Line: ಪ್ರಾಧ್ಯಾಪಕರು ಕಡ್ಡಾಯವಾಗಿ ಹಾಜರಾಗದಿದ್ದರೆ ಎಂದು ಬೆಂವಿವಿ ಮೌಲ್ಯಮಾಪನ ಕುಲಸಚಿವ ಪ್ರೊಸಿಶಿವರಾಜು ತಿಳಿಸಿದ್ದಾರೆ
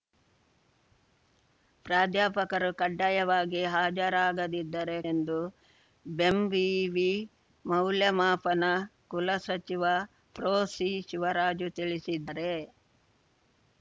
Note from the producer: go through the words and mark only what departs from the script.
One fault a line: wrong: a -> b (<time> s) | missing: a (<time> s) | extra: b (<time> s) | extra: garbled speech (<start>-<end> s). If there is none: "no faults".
no faults